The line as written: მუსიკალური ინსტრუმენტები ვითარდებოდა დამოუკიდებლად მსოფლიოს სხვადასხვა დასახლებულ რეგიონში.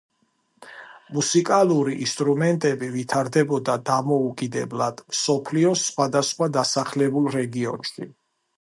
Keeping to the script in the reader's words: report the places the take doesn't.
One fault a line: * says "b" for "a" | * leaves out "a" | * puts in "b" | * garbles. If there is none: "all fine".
all fine